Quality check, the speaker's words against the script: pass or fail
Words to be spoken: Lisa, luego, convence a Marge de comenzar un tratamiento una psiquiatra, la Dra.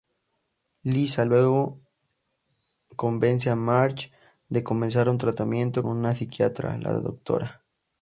pass